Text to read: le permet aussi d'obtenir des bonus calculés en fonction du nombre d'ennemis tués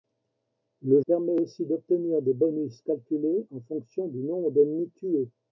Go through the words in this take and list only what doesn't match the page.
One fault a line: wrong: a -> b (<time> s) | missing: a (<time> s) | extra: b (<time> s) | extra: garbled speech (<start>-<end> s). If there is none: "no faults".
no faults